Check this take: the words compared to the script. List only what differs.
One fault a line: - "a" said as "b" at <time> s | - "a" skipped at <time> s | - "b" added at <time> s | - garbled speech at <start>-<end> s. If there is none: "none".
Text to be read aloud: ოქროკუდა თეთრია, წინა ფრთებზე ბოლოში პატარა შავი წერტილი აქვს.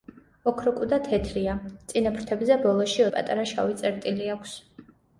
none